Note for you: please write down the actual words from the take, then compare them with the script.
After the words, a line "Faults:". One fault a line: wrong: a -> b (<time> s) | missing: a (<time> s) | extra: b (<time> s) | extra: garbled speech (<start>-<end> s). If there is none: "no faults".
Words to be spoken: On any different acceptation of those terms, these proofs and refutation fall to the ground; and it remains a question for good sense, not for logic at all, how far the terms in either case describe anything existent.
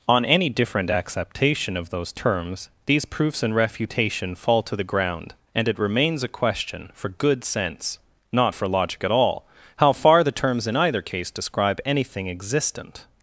On any different acceptation of those terms, these proofs and refutation fall to the ground; and it remains a question for good sense, not for logic at all, how far the terms in either case describe anything existent.
Faults:
no faults